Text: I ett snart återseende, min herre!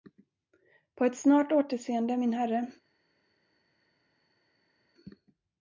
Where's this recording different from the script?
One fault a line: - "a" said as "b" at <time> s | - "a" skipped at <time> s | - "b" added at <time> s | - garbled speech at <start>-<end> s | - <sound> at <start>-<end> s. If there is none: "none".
- "I" said as "På" at 0.9 s